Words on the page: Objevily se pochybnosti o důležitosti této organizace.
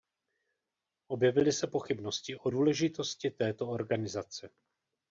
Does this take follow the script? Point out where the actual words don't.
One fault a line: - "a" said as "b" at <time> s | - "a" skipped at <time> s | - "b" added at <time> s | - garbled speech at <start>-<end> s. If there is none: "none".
none